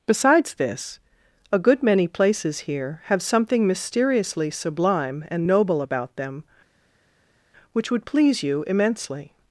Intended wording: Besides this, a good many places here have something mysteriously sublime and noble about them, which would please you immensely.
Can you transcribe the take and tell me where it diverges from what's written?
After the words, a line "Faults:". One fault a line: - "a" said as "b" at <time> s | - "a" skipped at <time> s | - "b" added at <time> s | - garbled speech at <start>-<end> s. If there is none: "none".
Besides this, a good many places here have something mysteriously sublime and noble about them, which would please you immensely.
Faults:
none